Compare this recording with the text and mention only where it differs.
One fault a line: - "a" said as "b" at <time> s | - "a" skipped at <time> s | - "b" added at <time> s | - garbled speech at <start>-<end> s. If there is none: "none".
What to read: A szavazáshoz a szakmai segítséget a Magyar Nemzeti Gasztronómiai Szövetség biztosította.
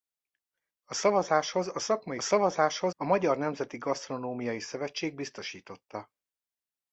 - "segítséget" said as "szavazáshoz" at 2.2 s